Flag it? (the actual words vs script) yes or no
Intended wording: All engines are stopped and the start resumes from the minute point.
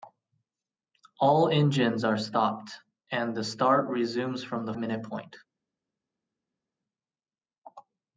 no